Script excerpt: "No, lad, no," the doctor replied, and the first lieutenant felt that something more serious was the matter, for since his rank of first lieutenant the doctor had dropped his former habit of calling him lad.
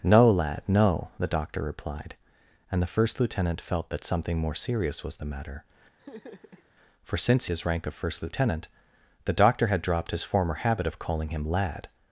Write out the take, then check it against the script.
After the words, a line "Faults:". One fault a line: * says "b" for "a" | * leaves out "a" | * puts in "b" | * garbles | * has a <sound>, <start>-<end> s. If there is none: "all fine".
"No, lad, no," the doctor replied, and the first lieutenant felt that something more serious was the matter, for since his rank of first lieutenant the doctor had dropped his former habit of calling him lad.
Faults:
* has a laugh, 6.0-6.7 s